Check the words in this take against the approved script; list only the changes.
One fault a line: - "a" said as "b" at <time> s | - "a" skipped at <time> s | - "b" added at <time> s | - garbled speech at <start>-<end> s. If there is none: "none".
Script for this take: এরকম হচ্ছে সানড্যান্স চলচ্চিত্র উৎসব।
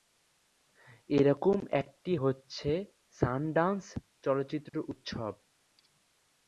- "একটি" added at 1.8 s